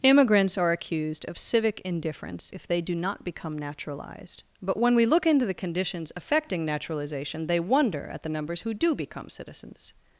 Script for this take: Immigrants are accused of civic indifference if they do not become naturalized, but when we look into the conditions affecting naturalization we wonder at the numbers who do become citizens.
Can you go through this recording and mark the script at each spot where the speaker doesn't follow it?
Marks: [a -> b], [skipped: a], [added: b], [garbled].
Immigrants are accused of civic indifference if they do not become naturalized, but when we look into the conditions affecting naturalization [we -> they] wonder at the numbers who do become citizens.